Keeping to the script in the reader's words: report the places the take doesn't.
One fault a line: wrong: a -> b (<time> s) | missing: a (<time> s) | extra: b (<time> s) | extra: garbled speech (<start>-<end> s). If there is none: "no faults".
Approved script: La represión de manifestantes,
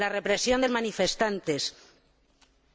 no faults